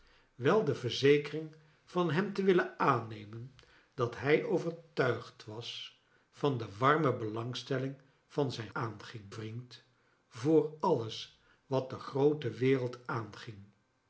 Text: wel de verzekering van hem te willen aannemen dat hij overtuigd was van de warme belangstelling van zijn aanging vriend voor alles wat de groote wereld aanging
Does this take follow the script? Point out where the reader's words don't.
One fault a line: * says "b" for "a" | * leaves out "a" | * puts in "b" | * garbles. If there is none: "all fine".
all fine